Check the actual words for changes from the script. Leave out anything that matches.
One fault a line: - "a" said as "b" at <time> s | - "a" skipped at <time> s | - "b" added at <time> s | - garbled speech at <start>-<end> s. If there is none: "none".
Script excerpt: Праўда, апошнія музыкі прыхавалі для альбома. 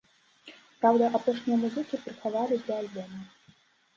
none